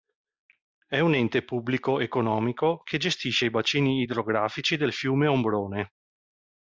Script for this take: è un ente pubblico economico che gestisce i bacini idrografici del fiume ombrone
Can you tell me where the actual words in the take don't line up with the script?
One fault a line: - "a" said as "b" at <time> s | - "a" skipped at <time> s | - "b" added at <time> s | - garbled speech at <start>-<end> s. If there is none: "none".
none